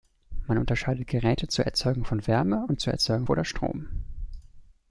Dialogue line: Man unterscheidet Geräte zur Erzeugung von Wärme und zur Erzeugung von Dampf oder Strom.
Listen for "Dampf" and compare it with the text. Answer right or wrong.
wrong